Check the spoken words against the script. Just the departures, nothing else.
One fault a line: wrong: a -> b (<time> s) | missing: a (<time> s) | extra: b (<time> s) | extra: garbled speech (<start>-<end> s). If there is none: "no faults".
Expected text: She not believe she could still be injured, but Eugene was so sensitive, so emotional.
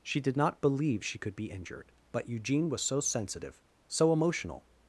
extra: did (0.2 s)
missing: still (1.4 s)